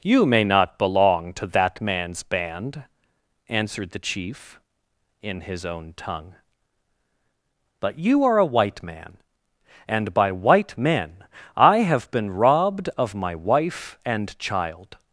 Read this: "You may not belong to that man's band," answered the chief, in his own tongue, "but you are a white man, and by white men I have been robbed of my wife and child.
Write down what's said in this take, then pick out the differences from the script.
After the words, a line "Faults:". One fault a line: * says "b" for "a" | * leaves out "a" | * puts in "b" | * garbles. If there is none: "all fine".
"You may not belong to that man's band," answered the chief, in his own tongue, "but you are a white man, and by white men I have been robbed of my wife and child.
Faults:
all fine